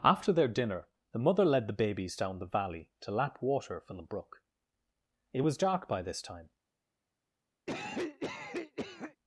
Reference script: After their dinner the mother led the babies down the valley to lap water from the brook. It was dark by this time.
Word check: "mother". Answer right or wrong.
right